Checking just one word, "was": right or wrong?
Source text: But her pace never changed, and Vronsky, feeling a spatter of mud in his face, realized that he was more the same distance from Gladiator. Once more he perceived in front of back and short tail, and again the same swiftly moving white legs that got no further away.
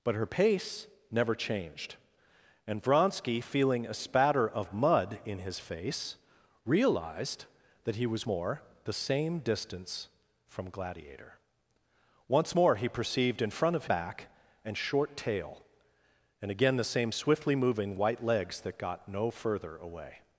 right